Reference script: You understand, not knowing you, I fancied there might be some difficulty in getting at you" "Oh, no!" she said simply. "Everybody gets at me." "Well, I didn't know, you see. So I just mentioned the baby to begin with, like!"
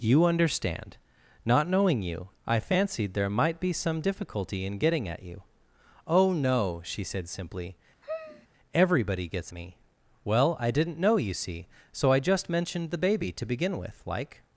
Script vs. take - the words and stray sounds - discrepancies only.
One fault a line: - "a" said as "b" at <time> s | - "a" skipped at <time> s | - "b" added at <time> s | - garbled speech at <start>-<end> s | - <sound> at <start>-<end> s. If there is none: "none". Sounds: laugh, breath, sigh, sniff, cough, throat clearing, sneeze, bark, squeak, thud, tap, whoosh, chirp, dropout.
- sigh at 8.0-8.5 s
- "at" skipped at 9.5 s